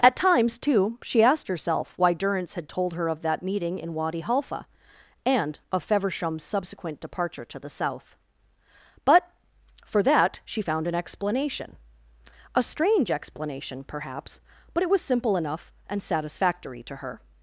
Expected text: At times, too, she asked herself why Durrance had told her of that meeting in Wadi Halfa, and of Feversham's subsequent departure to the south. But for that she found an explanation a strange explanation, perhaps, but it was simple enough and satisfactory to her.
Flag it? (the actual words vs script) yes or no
no